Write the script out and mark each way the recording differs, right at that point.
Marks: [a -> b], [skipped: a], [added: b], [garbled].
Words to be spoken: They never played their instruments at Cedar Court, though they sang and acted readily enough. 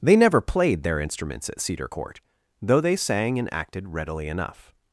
They never played their instruments at Cedar Court, though they sang and acted readily enough.